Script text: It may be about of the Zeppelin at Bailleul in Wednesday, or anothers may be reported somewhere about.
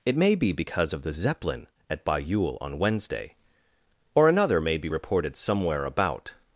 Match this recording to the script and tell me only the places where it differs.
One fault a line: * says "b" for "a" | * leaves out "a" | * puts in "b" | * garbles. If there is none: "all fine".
* says "because" for "about"
* says "on" for "in"
* says "another" for "anothers"